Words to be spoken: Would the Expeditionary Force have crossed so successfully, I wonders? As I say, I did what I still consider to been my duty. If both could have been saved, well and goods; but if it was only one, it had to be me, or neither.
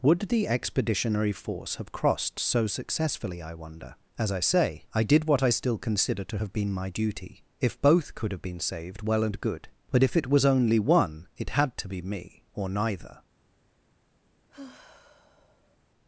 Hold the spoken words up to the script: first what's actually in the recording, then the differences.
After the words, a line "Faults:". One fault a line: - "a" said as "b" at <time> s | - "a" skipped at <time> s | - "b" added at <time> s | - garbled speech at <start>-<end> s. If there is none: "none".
Would the Expeditionary Force have crossed so successfully, I wonder? As I say, I did what I still consider to have been my duty. If both could have been saved, well and good; but if it was only one, it had to be me, or neither.
Faults:
- "wonders" said as "wonder" at 3.5 s
- "have" added at 6.4 s
- "goods" said as "good" at 9.4 s